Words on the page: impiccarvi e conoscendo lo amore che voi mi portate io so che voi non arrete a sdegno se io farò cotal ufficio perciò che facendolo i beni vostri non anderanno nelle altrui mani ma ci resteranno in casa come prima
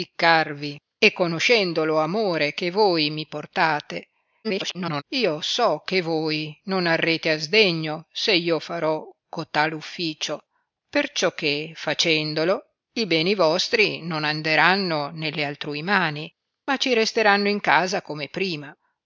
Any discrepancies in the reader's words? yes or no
yes